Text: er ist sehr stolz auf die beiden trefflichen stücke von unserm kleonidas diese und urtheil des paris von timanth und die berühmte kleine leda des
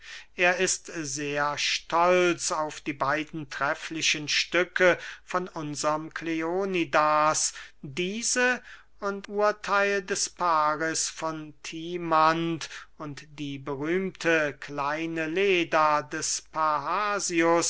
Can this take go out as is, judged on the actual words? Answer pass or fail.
pass